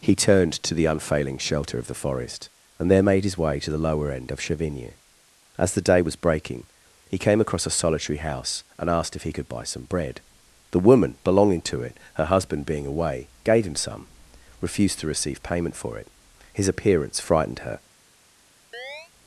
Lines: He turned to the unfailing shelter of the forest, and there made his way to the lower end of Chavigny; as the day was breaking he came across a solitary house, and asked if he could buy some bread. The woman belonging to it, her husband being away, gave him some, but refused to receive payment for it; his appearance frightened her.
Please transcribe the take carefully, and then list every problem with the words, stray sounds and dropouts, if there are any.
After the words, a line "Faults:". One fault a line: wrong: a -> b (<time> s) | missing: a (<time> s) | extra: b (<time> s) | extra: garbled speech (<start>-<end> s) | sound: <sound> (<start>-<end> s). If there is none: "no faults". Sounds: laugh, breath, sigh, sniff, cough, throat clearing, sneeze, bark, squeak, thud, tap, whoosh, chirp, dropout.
He turned to the unfailing shelter of the forest, and there made his way to the lower end of Chavigny; as the day was breaking he came across a solitary house, and asked if he could buy some bread. The woman belonging to it, her husband being away, gave him some, refused to receive payment for it; his appearance frightened her.
Faults:
missing: but (14.1 s)
sound: chirp (18.7-19.1 s)